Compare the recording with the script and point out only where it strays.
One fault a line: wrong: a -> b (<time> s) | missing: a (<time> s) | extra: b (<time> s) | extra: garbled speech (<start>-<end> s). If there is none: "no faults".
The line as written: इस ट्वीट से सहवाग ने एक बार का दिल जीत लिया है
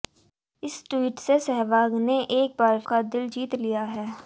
no faults